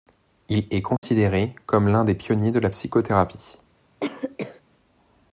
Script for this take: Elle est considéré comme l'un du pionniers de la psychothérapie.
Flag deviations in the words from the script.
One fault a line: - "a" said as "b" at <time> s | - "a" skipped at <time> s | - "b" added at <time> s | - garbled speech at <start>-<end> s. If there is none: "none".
- "Elle" said as "Il" at 0.5 s
- "du" said as "des" at 2.0 s